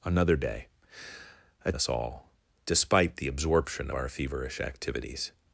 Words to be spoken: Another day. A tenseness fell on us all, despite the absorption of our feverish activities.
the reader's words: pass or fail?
fail